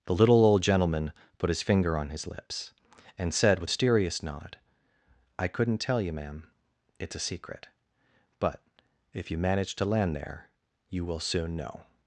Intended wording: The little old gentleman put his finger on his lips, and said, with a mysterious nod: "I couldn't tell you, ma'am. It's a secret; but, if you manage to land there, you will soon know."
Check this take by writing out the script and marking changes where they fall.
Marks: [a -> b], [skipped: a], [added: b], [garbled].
The little old gentleman put his finger on his lips, and said, with [skipped: a] mysterious nod: "I couldn't tell you, ma'am. It's a secret; but, if you manage to land there, you will soon know."